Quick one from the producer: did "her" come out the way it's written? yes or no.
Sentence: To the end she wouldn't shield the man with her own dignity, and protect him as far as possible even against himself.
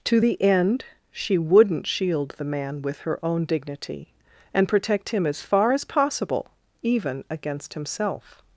yes